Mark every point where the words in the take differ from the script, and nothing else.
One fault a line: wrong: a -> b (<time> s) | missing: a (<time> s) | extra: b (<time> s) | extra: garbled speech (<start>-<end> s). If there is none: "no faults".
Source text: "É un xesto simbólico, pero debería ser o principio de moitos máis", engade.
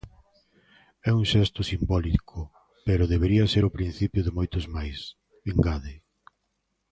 no faults